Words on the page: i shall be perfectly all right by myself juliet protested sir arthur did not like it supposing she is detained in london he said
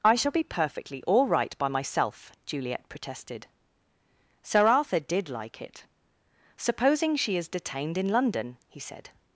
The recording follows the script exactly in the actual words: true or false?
false